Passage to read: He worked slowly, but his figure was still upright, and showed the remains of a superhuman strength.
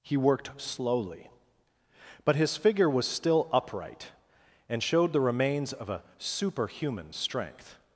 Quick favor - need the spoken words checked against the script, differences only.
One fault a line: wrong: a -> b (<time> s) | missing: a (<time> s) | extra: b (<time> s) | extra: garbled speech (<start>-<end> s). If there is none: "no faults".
no faults